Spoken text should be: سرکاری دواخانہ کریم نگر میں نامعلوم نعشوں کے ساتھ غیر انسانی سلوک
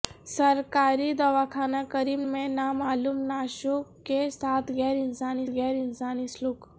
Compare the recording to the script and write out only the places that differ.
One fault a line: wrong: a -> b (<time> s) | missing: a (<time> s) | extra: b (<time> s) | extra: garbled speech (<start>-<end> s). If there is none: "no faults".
missing: نگر (2.2 s)
extra: غیر انسانی (5.5 s)